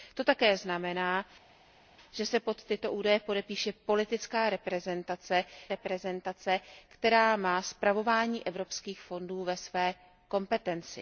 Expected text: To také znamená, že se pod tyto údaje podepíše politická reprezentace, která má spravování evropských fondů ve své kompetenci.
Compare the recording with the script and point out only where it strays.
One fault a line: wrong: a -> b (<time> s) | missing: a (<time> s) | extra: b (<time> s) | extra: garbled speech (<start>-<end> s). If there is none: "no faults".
extra: reprezentace (5.7 s)